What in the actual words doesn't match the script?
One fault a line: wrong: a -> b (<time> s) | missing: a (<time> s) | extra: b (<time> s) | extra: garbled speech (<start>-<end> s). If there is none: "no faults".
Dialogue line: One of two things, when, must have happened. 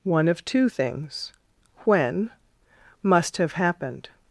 no faults